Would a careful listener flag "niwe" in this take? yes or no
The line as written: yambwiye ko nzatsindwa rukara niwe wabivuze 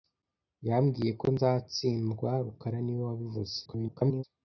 no